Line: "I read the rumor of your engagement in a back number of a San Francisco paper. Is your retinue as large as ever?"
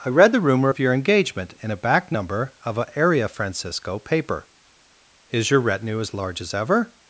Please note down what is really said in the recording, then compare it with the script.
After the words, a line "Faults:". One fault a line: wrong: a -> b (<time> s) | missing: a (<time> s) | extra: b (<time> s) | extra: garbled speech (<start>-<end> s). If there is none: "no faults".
"I read the rumor of your engagement in a back number of a Area Francisco paper. Is your retinue as large as ever?"
Faults:
wrong: San -> Area (3.0 s)